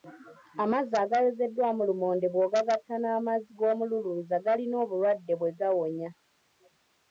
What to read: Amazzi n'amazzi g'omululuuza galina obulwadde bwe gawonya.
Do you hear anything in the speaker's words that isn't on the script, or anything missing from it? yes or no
yes